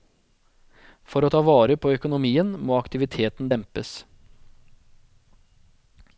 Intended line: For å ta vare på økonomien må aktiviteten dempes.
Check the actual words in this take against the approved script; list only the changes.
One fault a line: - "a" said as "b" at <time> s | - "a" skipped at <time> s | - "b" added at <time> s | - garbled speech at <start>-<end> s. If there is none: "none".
none